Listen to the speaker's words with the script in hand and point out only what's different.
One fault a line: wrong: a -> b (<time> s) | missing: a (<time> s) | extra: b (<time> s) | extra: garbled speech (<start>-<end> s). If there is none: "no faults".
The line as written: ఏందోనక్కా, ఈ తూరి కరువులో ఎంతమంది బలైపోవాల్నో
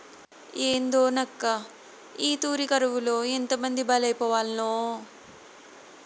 no faults